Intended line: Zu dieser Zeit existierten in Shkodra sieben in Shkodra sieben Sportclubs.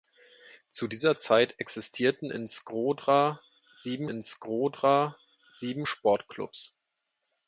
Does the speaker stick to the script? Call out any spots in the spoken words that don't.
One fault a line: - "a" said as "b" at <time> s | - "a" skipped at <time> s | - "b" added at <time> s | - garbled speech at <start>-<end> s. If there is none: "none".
none